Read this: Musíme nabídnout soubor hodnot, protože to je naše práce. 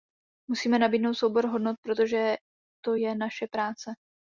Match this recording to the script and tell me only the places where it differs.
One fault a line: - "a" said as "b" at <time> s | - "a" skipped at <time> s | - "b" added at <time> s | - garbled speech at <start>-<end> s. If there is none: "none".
none